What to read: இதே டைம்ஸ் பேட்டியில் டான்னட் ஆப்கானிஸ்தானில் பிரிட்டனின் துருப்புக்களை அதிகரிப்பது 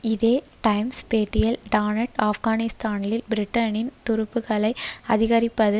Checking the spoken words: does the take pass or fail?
pass